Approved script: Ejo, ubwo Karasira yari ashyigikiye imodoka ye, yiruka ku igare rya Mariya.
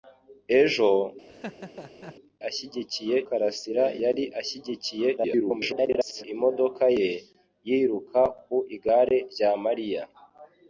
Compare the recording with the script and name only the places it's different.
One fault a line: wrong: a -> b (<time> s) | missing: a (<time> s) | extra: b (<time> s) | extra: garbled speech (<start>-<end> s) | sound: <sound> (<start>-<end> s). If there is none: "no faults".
sound: laugh (1.3-2.2 s)
wrong: ubwo -> ashyigikiye (2.5 s)
extra: garbled speech (5.2-6.2 s)